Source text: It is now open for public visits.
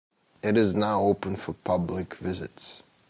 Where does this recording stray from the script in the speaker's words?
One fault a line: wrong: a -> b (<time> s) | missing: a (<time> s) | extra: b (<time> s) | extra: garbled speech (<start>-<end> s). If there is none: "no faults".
no faults